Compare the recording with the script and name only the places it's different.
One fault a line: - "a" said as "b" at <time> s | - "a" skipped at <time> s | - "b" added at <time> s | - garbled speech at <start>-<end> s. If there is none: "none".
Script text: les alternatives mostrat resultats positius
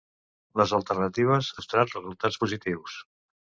none